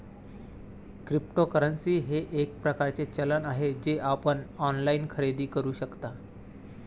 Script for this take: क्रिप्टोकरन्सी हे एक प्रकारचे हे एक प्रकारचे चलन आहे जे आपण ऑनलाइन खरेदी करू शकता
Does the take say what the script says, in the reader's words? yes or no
no